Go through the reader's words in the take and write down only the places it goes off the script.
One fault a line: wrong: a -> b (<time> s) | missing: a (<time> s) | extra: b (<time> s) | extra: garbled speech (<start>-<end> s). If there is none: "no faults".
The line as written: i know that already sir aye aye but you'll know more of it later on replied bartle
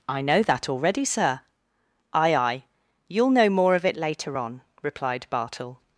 missing: but (2.6 s)